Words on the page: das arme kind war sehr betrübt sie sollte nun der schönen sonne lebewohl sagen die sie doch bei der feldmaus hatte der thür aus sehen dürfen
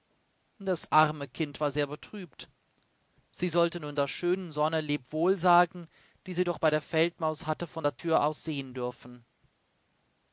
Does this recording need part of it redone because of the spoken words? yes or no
yes